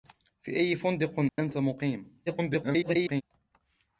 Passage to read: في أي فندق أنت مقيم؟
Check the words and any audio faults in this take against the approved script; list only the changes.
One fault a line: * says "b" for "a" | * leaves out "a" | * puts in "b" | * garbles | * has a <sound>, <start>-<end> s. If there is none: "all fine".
* has a dropout, 1.3-1.4 s
* garbles